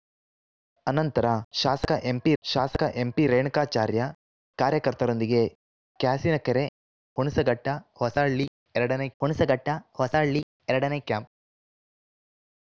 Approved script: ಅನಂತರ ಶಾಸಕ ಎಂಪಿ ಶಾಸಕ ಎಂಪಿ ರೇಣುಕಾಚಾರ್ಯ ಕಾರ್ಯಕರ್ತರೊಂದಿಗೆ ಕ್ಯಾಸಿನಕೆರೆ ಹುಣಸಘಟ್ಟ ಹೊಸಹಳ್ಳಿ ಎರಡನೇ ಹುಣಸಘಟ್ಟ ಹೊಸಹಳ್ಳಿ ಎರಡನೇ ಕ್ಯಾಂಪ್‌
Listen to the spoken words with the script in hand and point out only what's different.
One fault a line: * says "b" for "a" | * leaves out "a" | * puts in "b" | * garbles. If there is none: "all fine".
all fine